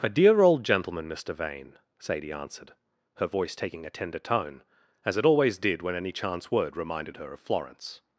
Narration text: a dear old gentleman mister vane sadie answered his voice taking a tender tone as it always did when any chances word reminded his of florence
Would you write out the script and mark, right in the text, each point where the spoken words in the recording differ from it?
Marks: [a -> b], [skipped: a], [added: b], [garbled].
a dear old gentleman mister vane sadie answered [his -> her] voice taking a tender tone as it always did when any [chances -> chance] word reminded [his -> her] of florence